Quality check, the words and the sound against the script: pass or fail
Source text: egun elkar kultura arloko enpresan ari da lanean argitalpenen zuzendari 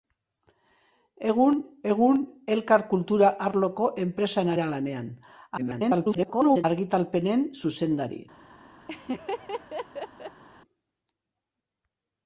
fail